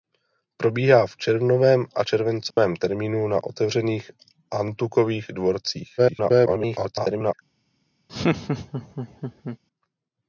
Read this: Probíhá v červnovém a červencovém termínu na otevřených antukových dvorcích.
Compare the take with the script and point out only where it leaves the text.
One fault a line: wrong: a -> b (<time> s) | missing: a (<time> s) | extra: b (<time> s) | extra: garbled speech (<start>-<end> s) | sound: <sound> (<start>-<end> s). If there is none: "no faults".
sound: dropout (2.5-2.6 s)
extra: garbled speech (6.0-7.3 s)
sound: laugh (8.1-9.6 s)